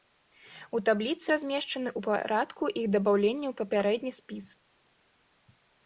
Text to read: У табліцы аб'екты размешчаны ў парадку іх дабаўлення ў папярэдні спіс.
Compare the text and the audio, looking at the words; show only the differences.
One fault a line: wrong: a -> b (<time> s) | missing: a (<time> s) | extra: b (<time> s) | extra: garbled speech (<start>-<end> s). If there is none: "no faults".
missing: аб'екты (1.3 s)